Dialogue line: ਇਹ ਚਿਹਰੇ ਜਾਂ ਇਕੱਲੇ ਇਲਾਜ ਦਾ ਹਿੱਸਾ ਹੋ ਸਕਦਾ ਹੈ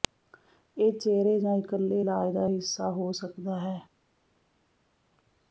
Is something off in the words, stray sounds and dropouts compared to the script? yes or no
no